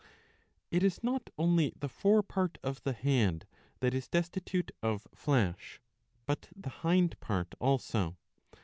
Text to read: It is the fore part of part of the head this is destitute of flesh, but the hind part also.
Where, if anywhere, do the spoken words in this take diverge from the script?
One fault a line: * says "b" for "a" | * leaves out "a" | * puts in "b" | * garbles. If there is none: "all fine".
* puts in "not only"
* leaves out "part of"
* says "that" for "this"